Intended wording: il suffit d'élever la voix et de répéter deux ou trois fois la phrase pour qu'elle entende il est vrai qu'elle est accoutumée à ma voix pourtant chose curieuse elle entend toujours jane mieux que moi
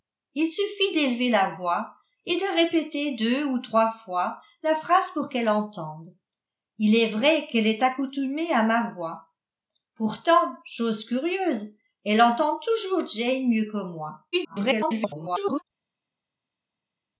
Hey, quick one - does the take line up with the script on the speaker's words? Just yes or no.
no